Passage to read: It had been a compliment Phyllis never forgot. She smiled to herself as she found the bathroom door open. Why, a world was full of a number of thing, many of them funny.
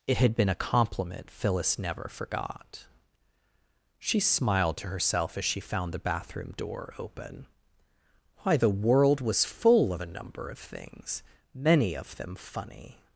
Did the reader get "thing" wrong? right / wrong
wrong